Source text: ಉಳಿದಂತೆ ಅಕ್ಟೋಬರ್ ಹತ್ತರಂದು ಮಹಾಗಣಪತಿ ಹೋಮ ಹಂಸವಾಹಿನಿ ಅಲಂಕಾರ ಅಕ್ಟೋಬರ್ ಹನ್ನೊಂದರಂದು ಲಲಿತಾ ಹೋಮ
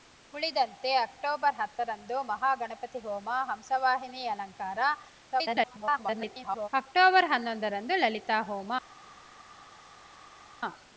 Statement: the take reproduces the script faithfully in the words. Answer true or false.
false